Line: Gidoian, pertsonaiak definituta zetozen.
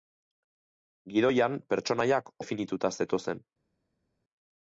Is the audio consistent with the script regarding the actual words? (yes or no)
yes